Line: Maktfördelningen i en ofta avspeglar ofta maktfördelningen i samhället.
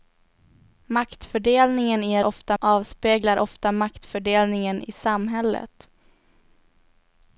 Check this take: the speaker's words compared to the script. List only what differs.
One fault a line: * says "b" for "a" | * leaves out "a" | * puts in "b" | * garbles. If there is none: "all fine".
all fine